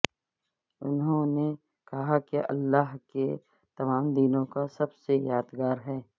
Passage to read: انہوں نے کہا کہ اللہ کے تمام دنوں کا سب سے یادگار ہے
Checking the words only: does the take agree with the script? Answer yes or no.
yes